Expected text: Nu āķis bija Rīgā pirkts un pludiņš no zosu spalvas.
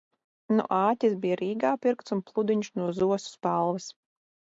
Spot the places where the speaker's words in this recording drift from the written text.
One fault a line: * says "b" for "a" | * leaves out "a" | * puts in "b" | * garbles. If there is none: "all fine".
all fine